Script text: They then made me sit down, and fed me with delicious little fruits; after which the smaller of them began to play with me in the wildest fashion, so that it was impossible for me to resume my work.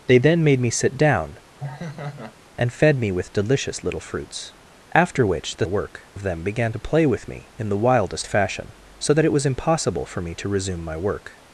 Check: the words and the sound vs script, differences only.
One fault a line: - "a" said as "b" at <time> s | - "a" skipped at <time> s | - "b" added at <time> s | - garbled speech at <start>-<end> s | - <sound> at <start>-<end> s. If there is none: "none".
- laugh at 1.6-2.3 s
- "smaller" said as "work" at 5.7 s